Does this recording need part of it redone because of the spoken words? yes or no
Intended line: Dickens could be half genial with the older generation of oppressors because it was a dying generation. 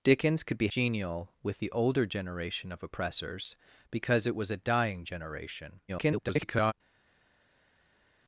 yes